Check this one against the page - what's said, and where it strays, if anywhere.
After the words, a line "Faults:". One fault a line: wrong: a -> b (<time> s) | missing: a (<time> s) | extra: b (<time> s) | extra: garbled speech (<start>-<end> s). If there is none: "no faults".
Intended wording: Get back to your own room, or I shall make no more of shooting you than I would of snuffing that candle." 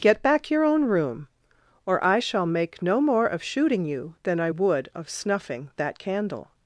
Get back your own room, or I shall make no more of shooting you than I would of snuffing that candle."
Faults:
missing: to (0.5 s)